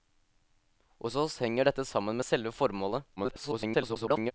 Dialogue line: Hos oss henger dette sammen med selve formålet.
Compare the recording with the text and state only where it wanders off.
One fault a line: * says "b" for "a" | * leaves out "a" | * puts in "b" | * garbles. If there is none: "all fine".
* garbles